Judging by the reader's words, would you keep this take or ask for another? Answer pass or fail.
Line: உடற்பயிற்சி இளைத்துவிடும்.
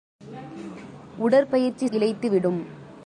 pass